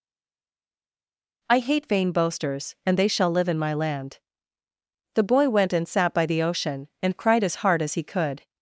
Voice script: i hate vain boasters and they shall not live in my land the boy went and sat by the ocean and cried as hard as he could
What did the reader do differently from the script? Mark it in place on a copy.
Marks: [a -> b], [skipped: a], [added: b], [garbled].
i hate vain boasters and they shall [skipped: not] live in my land the boy went and sat by the ocean and cried as hard as he could